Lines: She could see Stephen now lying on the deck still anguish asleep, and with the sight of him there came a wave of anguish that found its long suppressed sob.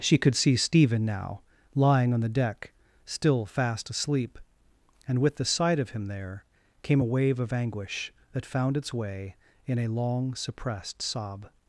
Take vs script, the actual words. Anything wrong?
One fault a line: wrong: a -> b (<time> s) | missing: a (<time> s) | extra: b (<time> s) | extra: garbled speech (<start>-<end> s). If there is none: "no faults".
wrong: anguish -> fast (3.5 s)
extra: way in a (8.9 s)